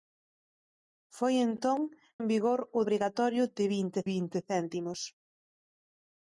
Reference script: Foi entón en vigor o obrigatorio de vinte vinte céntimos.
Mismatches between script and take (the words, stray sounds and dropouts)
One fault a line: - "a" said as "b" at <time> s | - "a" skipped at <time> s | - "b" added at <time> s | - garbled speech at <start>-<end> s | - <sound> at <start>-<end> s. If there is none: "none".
none